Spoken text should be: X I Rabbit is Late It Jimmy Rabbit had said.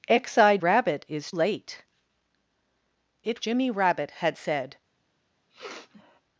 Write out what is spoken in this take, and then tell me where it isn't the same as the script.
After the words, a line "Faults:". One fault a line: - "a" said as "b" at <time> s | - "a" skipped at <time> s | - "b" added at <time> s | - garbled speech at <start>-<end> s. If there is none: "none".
X I Rabbit is Late It Jimmy Rabbit had said.
Faults:
none